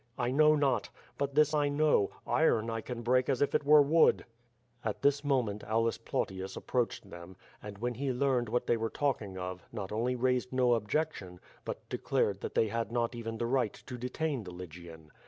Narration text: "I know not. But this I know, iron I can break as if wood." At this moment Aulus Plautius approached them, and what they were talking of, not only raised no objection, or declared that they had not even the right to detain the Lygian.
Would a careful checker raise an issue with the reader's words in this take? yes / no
yes